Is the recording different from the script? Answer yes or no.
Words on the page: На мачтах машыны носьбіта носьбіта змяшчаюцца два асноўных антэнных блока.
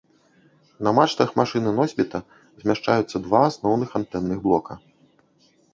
yes